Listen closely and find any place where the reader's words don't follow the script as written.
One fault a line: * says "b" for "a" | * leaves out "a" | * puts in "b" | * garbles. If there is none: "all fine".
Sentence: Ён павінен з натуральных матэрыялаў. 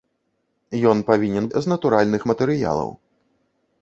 all fine